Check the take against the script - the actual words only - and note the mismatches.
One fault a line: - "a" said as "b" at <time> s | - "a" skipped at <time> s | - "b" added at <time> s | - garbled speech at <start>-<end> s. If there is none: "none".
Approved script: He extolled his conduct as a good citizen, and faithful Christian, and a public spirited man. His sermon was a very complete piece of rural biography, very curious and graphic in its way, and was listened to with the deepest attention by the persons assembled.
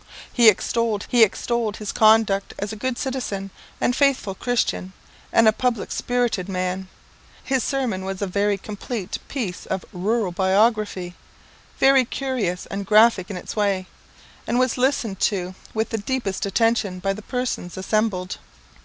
- "he extolled" added at 1.1 s